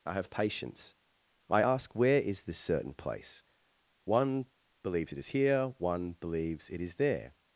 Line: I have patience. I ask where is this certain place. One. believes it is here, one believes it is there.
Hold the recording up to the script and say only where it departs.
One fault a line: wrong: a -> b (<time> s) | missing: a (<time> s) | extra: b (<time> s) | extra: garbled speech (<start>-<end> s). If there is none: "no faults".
no faults